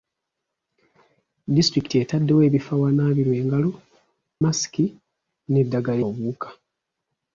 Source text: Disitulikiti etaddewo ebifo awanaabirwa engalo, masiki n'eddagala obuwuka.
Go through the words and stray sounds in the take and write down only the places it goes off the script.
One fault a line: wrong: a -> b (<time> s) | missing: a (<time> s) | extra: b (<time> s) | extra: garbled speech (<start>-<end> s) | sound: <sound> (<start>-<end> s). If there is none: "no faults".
no faults